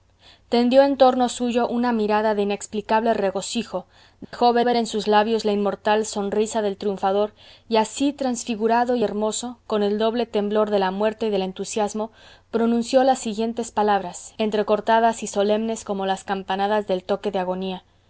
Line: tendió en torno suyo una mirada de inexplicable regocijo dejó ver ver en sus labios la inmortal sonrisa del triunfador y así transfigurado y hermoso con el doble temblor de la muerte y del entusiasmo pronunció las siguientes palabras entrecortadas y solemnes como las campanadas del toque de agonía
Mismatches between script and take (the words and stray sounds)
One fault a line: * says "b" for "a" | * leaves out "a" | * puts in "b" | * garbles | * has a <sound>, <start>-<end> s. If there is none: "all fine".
* has a dropout, 4.2-4.3 s